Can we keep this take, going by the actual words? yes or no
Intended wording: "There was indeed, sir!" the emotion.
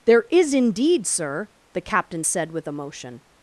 no